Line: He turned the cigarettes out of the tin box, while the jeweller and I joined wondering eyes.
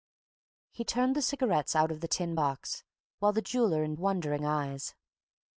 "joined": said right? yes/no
no